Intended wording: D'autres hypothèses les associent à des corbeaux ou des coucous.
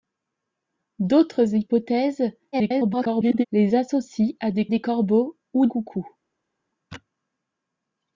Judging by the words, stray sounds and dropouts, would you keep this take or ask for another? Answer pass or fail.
fail